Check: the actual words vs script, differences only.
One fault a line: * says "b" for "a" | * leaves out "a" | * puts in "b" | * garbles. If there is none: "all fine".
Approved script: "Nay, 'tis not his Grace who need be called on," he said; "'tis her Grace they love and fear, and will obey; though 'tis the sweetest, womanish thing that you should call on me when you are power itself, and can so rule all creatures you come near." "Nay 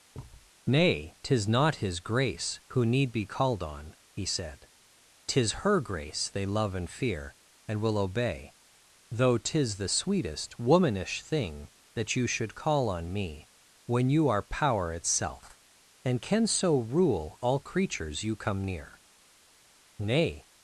all fine